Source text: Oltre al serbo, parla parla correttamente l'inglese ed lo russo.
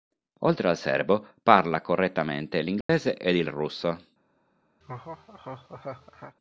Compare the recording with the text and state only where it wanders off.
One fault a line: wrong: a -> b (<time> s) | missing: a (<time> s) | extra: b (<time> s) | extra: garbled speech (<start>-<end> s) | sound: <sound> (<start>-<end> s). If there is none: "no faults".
missing: parla (1.8 s)
sound: dropout (2.8-2.9 s)
wrong: lo -> il (3.4 s)
sound: laugh (4.8-6.4 s)